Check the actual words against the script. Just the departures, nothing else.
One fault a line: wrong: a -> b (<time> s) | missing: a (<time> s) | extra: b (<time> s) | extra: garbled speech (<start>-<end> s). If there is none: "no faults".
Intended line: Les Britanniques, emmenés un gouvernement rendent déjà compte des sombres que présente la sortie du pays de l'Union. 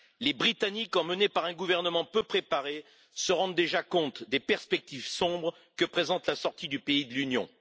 extra: par (1.3 s)
extra: peu préparé se (2.0 s)
extra: perspectives (4.4 s)